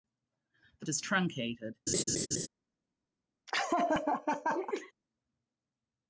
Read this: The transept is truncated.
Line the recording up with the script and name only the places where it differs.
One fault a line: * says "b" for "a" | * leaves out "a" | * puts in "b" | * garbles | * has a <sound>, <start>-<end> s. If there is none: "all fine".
* leaves out "transept"
* has a laugh, 1.9-2.5 s
* has a laugh, 3.5-4.9 s